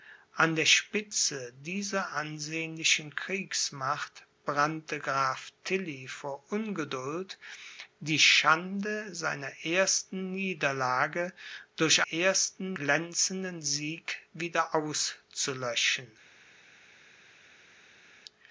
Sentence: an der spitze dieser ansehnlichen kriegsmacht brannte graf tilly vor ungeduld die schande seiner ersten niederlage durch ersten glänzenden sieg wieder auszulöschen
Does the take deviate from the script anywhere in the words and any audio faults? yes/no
no